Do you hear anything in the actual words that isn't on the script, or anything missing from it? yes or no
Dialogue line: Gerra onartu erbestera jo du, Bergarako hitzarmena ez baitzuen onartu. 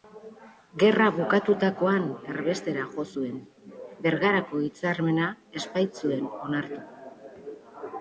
yes